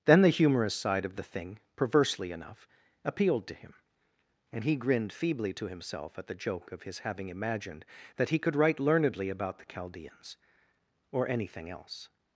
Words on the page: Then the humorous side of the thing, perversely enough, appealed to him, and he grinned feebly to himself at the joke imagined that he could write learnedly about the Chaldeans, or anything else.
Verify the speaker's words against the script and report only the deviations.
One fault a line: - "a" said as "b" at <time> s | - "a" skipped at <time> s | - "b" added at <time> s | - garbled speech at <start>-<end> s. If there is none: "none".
- "of his having" added at 6.7 s